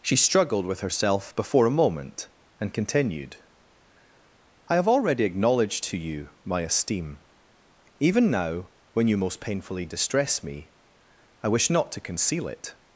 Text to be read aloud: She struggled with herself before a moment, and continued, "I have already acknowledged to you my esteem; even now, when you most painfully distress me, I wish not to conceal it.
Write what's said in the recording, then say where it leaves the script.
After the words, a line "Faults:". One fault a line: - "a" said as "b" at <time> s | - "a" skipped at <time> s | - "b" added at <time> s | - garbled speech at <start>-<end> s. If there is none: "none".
She struggled with herself before a moment, and continued, "I have already acknowledged to you my esteem; even now, when you most painfully distress me, I wish not to conceal it.
Faults:
none